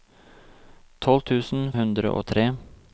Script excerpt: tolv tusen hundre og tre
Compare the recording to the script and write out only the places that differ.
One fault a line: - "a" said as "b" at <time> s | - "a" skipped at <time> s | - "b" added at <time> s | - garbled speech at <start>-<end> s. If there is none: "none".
none